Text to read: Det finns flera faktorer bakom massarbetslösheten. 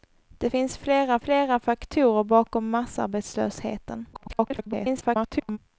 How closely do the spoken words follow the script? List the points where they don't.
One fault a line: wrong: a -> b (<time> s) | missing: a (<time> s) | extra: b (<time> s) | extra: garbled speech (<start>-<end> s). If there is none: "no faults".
extra: flera (1.2 s)
extra: garbled speech (4.1-5.6 s)